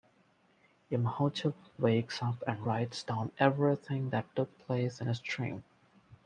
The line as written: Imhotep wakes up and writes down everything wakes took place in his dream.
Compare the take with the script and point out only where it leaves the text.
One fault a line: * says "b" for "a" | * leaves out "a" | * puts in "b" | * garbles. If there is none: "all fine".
* says "that" for "wakes"